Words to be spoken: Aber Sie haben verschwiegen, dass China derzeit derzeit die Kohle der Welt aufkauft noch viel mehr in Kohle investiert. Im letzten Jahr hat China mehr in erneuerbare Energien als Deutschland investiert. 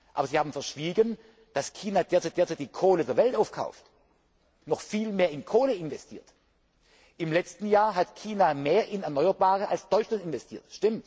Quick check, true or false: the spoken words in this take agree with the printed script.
true